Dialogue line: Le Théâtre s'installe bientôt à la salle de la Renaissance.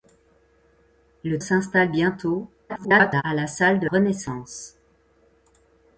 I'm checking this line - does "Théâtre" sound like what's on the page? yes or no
no